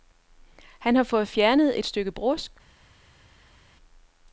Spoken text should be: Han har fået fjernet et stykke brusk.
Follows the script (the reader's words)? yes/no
yes